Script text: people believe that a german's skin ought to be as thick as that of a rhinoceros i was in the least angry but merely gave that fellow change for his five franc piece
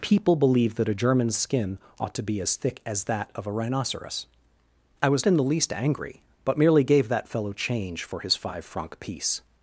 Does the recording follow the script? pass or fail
pass